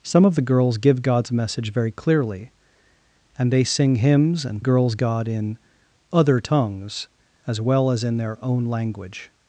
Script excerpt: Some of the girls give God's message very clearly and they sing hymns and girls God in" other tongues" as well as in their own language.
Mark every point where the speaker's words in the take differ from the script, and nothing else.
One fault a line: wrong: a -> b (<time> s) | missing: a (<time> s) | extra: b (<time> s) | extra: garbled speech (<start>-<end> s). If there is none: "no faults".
no faults